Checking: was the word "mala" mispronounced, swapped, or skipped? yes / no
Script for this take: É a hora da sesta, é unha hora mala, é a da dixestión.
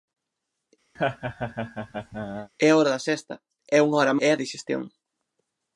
yes